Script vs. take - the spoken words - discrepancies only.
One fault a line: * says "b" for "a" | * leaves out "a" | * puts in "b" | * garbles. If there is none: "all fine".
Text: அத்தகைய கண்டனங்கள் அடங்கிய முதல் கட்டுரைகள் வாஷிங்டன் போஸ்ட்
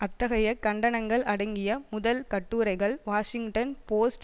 all fine